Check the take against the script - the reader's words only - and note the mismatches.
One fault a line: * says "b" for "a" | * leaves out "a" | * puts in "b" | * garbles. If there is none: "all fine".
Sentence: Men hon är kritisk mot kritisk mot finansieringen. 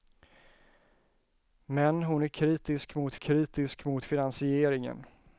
all fine